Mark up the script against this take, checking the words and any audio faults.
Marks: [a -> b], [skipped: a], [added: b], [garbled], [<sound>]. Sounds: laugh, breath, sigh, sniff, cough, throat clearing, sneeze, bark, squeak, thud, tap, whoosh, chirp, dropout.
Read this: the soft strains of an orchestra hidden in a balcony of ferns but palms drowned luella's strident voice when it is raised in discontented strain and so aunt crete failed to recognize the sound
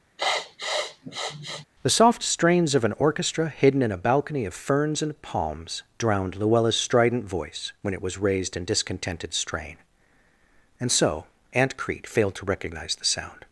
[sniff] the soft strains of an orchestra hidden in a balcony of ferns [but -> and] palms drowned luella's strident voice when it [is -> was] raised in discontented strain and so aunt crete failed to recognize the sound